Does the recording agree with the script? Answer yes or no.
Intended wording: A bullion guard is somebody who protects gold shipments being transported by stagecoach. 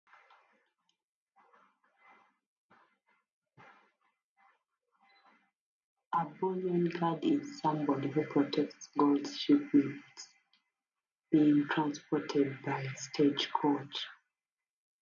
yes